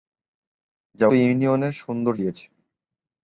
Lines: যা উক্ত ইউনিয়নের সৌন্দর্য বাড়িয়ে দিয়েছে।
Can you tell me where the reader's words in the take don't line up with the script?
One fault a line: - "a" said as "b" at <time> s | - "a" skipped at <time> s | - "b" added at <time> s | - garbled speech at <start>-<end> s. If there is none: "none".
- "উক্ত" skipped at 1.1 s
- "বাড়িয়ে" skipped at 2.2 s